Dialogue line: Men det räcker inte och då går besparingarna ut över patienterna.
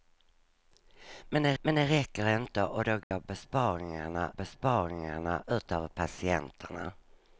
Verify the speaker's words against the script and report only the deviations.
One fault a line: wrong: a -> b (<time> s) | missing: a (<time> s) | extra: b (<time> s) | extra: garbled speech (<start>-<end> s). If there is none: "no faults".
extra: men det (1.6 s)
extra: besparingarna (4.3 s)